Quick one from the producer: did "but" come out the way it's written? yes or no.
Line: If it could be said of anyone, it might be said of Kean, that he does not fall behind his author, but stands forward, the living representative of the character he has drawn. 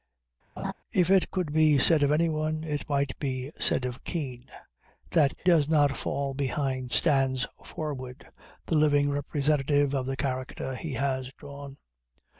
no